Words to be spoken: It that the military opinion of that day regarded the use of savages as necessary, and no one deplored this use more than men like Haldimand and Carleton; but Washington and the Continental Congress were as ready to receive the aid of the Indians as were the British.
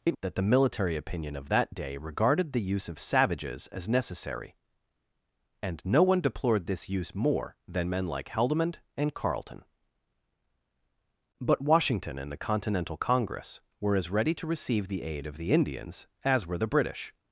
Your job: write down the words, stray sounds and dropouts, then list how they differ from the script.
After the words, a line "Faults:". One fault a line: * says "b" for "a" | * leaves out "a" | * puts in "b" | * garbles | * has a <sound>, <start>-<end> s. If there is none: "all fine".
It that the military opinion of that day regarded the use of savages as necessary, and no one deplored this use more than men like Haldimand and Carleton; but Washington and the Continental Congress were as ready to receive the aid of the Indians as were the British.
Faults:
all fine